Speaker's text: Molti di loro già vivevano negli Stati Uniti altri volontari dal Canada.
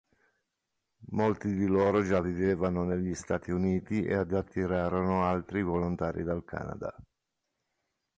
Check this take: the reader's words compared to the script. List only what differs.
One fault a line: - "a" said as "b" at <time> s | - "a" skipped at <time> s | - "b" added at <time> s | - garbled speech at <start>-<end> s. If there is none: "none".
- "ed attirarono" added at 4.0 s